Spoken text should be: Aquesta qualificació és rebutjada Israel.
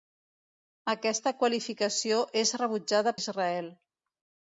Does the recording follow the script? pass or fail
pass